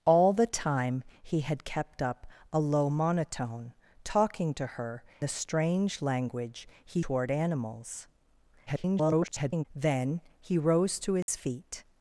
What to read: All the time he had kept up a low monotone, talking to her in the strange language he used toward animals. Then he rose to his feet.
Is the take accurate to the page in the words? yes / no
no